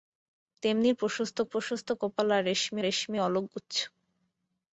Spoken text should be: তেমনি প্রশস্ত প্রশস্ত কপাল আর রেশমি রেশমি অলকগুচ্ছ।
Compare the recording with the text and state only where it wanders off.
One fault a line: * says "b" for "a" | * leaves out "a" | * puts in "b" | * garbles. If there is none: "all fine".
all fine